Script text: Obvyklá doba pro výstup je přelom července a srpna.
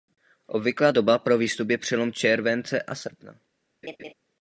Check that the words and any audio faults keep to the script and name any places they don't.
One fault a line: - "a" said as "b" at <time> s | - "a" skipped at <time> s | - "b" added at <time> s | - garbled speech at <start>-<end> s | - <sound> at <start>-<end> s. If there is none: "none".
- laugh at 3.8-4.1 s